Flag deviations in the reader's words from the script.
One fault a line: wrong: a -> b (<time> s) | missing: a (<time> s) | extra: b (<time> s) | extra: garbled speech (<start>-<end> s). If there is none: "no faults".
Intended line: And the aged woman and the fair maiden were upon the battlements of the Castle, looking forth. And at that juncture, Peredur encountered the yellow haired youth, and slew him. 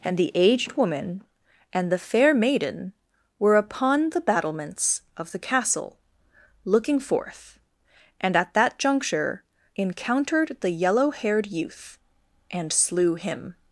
missing: Peredur (9.4 s)